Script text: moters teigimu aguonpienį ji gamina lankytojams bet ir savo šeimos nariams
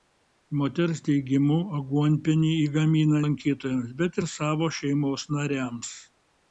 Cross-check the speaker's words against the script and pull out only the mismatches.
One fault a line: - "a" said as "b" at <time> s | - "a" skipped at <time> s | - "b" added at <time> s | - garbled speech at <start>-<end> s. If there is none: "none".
none